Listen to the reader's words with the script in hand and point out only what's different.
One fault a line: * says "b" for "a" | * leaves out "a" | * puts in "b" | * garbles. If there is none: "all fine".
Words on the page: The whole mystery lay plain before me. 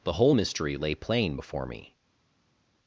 all fine